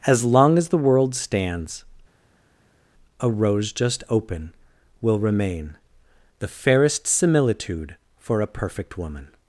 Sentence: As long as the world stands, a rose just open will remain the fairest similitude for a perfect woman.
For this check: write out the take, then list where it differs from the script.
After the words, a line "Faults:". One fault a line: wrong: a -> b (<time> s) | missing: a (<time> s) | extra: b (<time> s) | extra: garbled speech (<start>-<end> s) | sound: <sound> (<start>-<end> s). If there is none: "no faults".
As long as the world stands, a rose just open will remain the fairest similitude for a perfect woman.
Faults:
no faults